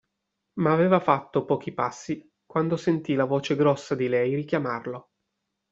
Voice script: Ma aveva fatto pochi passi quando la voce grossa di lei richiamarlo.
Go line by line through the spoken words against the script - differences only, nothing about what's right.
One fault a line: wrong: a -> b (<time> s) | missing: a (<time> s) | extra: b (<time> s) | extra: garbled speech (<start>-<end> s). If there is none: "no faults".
extra: sentì (2.8 s)